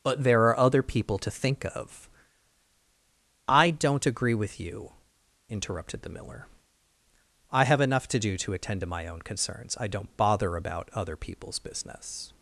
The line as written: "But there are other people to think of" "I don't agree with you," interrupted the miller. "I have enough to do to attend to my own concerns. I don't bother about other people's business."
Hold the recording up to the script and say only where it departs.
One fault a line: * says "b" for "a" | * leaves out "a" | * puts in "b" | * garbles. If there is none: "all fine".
all fine